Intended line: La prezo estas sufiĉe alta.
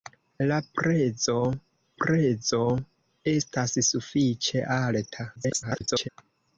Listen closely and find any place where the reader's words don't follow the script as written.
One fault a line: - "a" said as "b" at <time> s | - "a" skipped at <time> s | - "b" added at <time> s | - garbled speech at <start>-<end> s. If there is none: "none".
- "prezo" added at 2.0 s
- garbled speech at 5.4-6.1 s